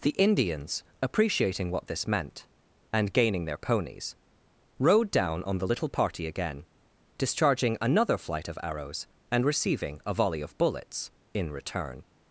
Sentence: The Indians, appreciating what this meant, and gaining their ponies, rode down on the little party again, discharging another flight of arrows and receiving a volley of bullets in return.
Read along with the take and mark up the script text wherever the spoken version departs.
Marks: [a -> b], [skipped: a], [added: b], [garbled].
The Indians, appreciating what this meant, and gaining their ponies, rode down on the little party again, discharging another flight of arrows and receiving a volley of bullets in return.